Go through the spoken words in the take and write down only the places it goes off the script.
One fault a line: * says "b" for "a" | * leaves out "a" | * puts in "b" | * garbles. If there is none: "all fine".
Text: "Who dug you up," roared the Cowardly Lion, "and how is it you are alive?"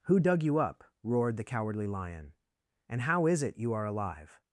all fine